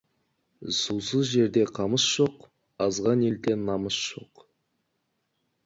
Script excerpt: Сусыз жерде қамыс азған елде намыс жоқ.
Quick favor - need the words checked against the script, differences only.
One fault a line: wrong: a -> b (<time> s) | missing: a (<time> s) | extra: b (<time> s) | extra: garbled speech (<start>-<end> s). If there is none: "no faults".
extra: жоқ (2.1 s)